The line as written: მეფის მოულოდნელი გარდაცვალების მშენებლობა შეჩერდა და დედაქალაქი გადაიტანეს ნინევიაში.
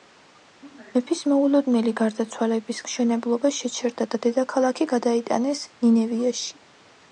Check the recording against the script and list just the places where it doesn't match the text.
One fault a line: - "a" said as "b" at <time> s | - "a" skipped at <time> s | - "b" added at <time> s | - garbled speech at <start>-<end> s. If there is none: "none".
none